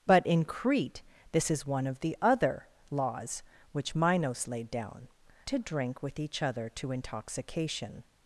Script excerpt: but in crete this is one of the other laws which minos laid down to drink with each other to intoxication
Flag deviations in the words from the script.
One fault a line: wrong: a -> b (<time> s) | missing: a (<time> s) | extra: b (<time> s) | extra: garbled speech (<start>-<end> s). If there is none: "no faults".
no faults